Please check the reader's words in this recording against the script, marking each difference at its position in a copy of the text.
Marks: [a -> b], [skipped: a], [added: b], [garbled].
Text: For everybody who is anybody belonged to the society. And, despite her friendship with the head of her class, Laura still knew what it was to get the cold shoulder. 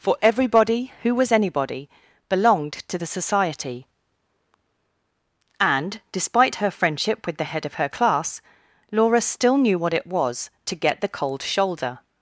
For everybody who [is -> was] anybody belonged to the society. And, despite her friendship with the head of her class, Laura still knew what it was to get the cold shoulder.